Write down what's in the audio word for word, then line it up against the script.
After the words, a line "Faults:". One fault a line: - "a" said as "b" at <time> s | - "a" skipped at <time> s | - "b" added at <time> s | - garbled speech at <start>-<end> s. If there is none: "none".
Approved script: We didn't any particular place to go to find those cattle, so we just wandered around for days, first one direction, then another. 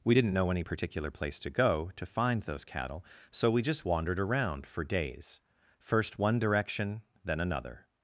We didn't know any particular place to go to find those cattle, so we just wandered around for days, first one direction, then another.
Faults:
- "know" added at 0.3 s